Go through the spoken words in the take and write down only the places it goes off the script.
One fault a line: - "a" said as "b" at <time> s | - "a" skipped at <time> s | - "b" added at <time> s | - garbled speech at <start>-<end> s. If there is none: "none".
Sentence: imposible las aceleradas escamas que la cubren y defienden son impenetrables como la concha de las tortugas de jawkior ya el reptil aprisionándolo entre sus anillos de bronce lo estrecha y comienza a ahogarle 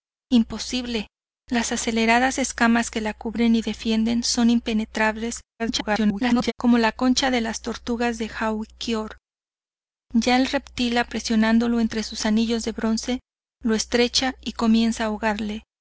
- garbled speech at 5.6-6.5 s